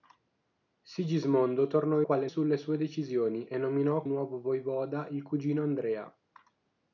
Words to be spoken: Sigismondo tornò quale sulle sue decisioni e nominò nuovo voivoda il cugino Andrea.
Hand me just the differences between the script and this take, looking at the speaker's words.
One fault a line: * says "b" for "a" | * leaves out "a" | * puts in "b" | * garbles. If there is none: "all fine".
all fine